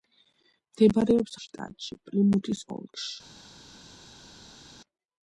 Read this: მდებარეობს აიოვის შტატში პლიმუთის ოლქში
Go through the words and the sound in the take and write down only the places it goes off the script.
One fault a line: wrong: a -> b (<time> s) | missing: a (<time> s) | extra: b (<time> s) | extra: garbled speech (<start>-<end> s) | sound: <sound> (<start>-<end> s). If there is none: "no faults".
missing: აიოვის (1.4 s)